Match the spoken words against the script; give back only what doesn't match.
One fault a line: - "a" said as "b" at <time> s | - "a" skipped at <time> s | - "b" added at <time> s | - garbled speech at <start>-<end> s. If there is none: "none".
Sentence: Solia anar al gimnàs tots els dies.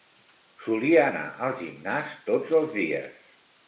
none